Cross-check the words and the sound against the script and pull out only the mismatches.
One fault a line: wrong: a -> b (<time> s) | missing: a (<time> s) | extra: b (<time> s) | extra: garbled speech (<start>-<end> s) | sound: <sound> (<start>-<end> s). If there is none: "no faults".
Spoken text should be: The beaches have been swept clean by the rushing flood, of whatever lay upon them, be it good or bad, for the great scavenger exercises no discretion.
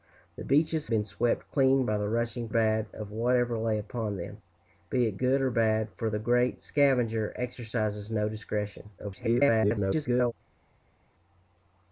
missing: have (0.9 s)
wrong: flood -> bad (2.5 s)
extra: garbled speech (9.0-10.3 s)